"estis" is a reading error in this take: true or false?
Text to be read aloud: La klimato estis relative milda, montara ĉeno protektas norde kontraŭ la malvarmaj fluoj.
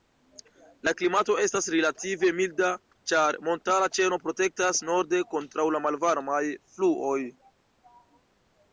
true